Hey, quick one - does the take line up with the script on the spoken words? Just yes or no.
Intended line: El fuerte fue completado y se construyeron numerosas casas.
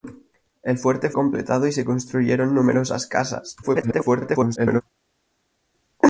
no